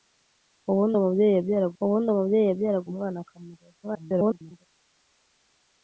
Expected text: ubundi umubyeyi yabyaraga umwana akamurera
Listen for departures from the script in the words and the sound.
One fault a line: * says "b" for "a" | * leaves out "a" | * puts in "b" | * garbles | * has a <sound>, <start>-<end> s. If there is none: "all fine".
* puts in "ubundi umubyeyi yabyaraga"
* garbles